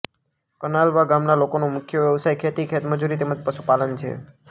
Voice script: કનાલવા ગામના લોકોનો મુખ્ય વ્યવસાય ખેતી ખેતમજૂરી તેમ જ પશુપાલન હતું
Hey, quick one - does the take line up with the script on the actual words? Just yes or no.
no